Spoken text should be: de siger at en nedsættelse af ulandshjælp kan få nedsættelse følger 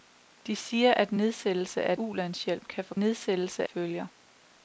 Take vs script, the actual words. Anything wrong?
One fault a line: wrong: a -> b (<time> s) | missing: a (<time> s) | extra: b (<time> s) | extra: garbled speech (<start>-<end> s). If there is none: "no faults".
no faults